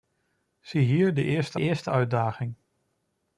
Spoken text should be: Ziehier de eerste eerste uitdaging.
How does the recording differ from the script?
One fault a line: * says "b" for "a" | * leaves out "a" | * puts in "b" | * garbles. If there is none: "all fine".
all fine